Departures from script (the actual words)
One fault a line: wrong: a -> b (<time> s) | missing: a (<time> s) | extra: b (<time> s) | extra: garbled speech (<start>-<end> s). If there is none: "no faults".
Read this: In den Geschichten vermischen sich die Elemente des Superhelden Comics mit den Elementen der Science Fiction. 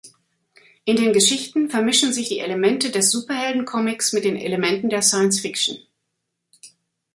no faults